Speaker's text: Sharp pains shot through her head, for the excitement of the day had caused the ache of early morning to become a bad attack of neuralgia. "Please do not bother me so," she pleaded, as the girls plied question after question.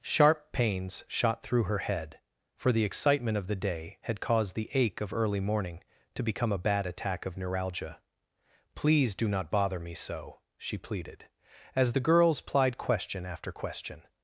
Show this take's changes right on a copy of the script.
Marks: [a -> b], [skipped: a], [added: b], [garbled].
Sharp pains shot through her head, for the excitement of the day had caused the ache of early morning to become a bad attack of neuralgia. "Please do not bother me so," she pleaded, as the girls plied question after question.